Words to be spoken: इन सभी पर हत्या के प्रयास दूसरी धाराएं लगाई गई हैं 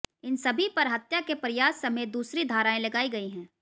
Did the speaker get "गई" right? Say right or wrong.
right